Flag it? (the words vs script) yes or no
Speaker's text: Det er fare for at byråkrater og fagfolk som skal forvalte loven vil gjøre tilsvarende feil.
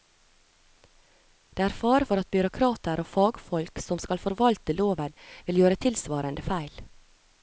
no